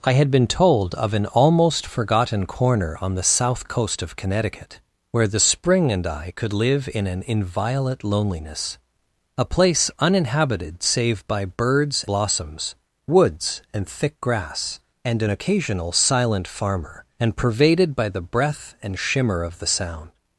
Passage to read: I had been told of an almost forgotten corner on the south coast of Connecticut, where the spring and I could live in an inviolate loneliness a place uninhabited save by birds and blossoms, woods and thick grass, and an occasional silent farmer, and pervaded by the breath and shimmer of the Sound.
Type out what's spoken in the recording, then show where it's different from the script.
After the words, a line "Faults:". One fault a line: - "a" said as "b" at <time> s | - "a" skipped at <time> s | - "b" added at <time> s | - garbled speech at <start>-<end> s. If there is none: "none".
I had been told of an almost forgotten corner on the south coast of Connecticut, where the spring and I could live in an inviolate loneliness a place uninhabited save by birds blossoms, woods and thick grass, and an occasional silent farmer, and pervaded by the breath and shimmer of the Sound.
Faults:
- "and" skipped at 12.1 s